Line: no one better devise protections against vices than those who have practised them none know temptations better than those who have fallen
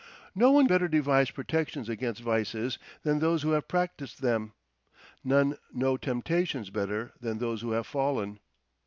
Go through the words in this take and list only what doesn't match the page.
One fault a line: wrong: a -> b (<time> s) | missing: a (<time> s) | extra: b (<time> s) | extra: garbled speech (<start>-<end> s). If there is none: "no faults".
no faults